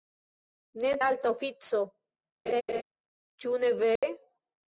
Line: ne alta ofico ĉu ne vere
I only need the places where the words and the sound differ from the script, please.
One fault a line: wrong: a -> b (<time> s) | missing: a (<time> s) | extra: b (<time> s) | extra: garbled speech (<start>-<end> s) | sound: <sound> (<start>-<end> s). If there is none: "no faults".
sound: laugh (2.5-2.8 s)
sound: dropout (4.0-4.0 s)